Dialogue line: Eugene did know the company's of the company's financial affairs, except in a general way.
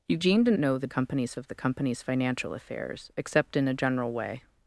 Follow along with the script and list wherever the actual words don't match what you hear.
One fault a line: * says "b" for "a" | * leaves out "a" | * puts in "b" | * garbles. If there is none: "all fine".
all fine